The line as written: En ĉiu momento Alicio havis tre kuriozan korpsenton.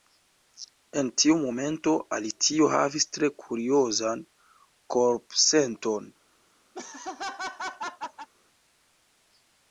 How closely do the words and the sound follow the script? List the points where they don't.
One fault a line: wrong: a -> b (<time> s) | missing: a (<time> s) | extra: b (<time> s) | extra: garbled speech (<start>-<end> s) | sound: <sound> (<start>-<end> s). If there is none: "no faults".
wrong: ĉiu -> tiu (1.2 s)
sound: laugh (6.7-8.3 s)